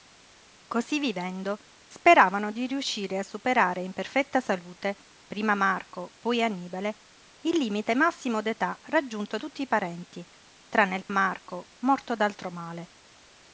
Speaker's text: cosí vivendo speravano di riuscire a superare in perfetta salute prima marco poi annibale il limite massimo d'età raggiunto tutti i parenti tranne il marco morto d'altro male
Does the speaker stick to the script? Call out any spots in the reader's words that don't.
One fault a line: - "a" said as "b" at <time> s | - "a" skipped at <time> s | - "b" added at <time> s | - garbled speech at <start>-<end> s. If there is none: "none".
none